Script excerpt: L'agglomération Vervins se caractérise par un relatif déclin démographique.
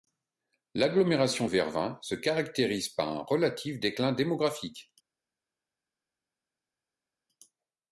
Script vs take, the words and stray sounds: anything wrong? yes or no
no